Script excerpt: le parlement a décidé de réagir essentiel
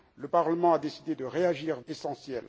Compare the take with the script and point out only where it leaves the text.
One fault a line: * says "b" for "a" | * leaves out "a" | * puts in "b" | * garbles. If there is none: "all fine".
all fine